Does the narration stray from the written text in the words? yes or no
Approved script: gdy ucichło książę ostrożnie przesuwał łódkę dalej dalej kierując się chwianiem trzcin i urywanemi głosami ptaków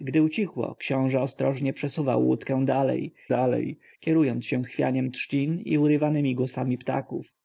no